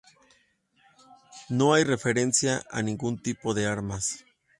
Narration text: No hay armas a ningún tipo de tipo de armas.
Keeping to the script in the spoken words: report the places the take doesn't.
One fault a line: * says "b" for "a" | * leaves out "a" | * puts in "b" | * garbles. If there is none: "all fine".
* says "referencia" for "armas"
* leaves out "tipo de"